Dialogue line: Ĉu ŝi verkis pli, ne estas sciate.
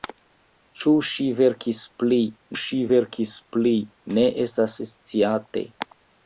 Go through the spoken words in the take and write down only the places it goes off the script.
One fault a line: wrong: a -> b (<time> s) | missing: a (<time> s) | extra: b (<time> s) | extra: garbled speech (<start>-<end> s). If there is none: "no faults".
extra: ŝi verkis pli (2.6 s)